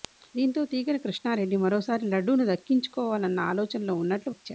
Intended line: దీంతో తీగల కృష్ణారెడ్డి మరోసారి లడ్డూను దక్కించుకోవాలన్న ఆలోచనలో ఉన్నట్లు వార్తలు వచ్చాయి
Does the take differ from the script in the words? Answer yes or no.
yes